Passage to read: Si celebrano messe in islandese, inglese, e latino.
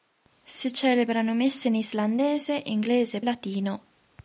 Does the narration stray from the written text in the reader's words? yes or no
no